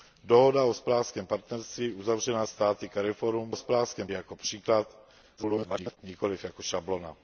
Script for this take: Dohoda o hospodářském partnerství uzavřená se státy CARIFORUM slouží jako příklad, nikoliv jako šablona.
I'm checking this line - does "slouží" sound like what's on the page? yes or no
no